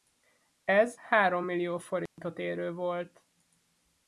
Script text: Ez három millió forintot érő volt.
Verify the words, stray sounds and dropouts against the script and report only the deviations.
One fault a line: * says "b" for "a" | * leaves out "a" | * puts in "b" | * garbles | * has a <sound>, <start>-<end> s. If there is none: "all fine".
* has a dropout, 2.1-2.2 s